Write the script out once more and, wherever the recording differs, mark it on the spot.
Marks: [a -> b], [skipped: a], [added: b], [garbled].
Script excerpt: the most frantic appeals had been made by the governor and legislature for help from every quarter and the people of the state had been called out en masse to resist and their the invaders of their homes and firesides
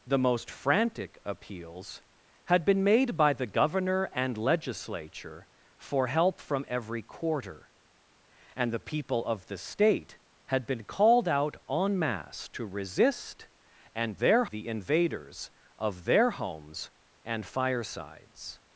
the most frantic appeals had been made by the governor and legislature for help from every quarter and the people of the state had been called out en masse to resist and their the invaders of their homes and firesides